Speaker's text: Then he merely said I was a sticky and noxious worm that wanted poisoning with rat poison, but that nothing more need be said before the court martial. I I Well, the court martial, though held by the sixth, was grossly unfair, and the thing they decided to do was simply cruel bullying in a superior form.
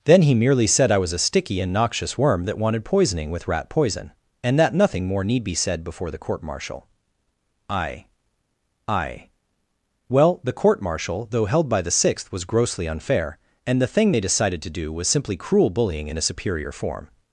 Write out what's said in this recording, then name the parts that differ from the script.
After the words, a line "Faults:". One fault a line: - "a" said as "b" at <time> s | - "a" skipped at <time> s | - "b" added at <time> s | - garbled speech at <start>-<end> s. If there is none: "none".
Then he merely said I was a sticky and noxious worm that wanted poisoning with rat poison, and that nothing more need be said before the court martial. I I Well, the court martial, though held by the sixth, was grossly unfair, and the thing they decided to do was simply cruel bullying in a superior form.
Faults:
- "but" said as "and" at 4.4 s